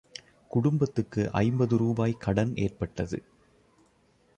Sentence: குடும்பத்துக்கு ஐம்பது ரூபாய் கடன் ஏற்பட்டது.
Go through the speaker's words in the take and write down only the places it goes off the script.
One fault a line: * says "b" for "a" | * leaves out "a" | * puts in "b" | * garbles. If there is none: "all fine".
all fine